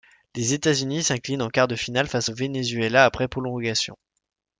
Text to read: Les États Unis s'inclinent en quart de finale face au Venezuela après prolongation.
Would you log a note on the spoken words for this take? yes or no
no